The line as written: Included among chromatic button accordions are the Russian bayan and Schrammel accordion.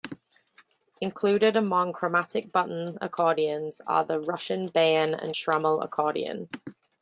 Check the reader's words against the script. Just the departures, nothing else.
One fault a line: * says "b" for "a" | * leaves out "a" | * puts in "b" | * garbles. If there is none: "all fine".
all fine